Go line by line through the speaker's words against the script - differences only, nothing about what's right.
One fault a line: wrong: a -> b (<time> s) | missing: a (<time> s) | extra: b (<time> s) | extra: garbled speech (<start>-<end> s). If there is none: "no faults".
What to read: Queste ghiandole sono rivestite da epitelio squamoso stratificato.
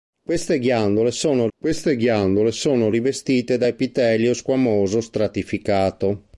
extra: queste ghiandole sono (1.6 s)